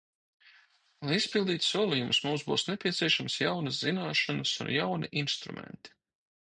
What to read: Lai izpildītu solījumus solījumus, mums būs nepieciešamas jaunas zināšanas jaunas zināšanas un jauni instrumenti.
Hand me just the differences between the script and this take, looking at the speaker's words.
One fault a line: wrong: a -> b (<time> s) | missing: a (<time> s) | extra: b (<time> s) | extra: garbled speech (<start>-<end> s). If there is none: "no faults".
missing: solījumus (2.2 s)
missing: jaunas zināšanas (4.6 s)